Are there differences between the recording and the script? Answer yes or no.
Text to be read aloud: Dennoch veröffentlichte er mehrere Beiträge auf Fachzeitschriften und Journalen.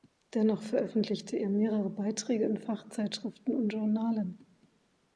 yes